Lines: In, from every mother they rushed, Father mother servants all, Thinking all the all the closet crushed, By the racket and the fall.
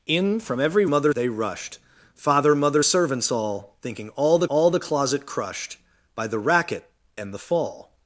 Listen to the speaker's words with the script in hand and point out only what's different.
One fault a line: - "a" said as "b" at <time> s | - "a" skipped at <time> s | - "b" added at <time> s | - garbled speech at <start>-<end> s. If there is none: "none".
none